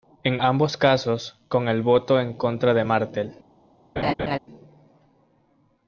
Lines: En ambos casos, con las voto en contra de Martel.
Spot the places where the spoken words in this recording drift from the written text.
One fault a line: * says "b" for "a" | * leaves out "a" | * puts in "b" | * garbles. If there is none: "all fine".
* says "el" for "las"